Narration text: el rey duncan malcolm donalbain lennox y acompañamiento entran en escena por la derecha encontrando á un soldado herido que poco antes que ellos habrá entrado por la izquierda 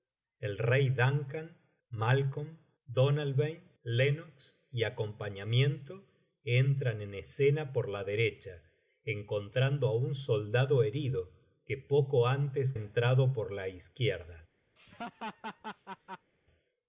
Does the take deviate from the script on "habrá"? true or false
true